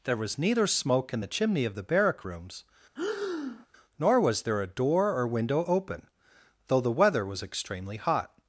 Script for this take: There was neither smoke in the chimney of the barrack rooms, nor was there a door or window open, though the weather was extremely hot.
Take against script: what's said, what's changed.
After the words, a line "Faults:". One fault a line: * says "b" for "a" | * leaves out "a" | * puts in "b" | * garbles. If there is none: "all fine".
There was neither smoke in the chimney of the barrack rooms, nor was there a door or window open, though the weather was extremely hot.
Faults:
all fine